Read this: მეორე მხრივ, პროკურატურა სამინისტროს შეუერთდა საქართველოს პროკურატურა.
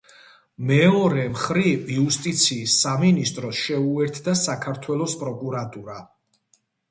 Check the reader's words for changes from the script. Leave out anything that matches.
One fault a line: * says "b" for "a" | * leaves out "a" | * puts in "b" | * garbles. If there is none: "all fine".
* says "იუსტიციის" for "პროკურატურა"